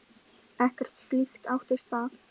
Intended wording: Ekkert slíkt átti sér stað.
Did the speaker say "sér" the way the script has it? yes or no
no